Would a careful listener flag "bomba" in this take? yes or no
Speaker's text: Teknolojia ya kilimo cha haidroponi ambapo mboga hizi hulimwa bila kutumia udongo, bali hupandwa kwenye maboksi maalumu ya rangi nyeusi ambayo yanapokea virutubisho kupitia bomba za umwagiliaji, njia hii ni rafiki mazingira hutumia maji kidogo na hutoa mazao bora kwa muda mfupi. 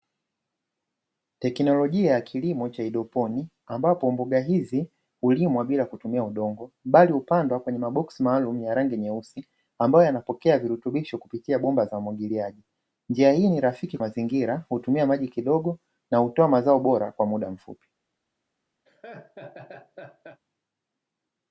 no